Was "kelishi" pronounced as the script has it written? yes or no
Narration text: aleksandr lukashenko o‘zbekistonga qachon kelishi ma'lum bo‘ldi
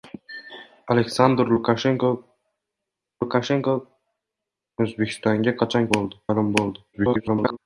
no